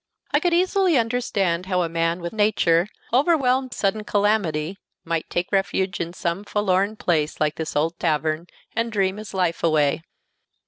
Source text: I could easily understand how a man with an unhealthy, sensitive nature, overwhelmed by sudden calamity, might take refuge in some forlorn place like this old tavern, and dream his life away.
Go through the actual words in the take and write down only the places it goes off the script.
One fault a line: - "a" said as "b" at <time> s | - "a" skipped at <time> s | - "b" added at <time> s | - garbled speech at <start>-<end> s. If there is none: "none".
- "an unhealthy sensitive" skipped at 2.4 s
- "by" skipped at 3.7 s